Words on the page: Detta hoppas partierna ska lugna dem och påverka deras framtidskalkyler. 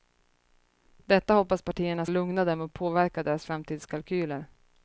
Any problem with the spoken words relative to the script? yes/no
yes